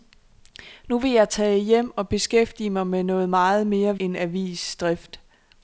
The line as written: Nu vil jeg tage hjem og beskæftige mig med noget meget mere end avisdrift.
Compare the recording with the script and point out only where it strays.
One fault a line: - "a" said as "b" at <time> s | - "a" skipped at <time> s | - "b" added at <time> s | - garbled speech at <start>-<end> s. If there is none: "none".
none